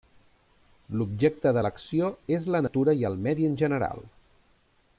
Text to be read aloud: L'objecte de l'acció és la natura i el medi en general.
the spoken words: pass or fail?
pass